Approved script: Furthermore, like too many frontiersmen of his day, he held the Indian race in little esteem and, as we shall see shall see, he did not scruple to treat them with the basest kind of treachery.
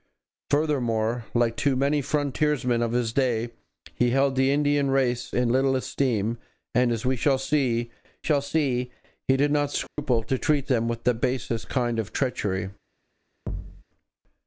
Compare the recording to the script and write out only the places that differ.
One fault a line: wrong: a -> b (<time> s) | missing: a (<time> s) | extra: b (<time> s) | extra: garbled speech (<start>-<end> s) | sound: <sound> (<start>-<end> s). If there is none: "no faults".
sound: dropout (9.9-10.0 s)
sound: thud (13.5-13.8 s)